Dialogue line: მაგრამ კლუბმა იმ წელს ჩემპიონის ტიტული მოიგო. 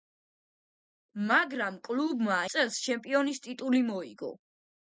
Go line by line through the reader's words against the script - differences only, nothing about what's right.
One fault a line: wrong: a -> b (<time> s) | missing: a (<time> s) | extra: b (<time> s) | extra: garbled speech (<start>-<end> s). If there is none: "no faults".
missing: იმ (2.4 s)